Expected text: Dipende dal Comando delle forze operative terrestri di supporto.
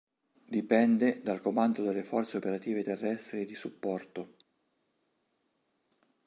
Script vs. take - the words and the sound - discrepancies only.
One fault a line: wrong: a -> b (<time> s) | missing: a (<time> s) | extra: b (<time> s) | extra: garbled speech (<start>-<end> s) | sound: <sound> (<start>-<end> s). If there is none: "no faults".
no faults